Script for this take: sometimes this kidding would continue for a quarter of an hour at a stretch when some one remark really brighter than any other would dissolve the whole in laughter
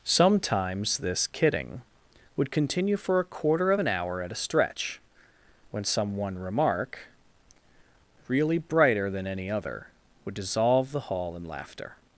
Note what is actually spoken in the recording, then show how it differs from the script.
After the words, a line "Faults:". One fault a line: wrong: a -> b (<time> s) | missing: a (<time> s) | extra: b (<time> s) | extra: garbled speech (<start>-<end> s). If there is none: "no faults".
sometimes this kidding would continue for a quarter of an hour at a stretch when some one remark really brighter than any other would dissolve the hall in laughter
Faults:
wrong: whole -> hall (11.1 s)